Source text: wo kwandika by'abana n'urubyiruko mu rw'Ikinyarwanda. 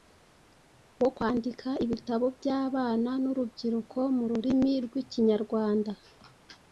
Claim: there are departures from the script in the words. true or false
true